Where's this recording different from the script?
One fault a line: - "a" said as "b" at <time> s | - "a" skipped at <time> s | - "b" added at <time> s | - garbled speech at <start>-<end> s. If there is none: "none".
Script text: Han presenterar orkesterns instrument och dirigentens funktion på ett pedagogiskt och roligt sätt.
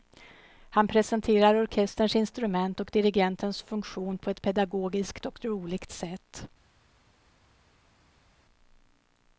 none